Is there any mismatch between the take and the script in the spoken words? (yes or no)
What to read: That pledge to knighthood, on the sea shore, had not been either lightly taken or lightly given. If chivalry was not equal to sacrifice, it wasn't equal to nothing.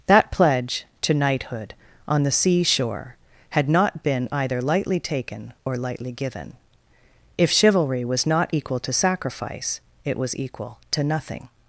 yes